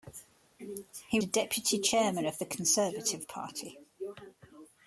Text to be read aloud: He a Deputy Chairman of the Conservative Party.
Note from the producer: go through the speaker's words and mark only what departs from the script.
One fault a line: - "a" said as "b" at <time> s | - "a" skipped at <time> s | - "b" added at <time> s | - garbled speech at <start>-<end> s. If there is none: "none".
none